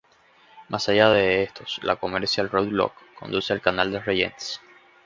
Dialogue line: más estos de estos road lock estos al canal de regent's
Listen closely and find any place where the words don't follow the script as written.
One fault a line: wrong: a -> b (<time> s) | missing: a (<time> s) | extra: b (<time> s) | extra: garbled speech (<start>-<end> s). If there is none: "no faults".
wrong: estos -> allá (0.9 s)
extra: la commercial (1.8 s)
wrong: estos -> conduce (3.2 s)